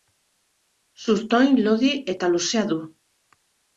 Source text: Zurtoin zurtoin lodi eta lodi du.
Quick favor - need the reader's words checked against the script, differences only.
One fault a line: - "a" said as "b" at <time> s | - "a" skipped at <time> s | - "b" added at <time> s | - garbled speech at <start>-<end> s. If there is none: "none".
- "zurtoin" skipped at 1.6 s
- "lodi" said as "luzea" at 2.4 s